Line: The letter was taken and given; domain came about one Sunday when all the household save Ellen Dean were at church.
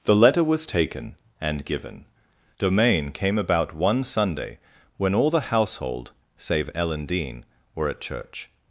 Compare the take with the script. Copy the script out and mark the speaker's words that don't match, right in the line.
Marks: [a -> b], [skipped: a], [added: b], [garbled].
The letter was taken and given; domain came about one Sunday when all the household save Ellen Dean were at church.